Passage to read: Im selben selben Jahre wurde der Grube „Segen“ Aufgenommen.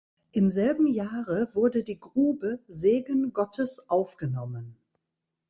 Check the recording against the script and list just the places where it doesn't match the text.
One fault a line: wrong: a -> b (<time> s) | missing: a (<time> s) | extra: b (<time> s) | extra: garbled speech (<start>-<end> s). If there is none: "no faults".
missing: selben (0.9 s)
wrong: der -> die (1.8 s)
extra: Gottes (3.3 s)